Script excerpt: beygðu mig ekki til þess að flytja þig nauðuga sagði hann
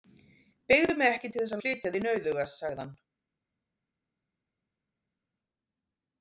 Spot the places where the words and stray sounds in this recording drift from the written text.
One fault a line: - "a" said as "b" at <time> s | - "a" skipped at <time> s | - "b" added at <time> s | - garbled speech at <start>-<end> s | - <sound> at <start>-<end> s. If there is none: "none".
none